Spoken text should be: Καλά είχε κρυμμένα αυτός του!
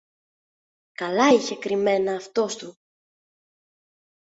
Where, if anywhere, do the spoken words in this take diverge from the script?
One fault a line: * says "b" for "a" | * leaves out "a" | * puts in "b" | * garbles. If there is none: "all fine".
all fine